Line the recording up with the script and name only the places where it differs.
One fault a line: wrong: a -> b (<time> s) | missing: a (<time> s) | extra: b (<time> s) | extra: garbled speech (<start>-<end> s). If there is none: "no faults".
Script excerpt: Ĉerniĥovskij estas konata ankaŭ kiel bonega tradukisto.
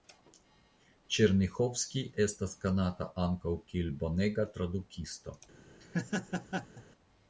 no faults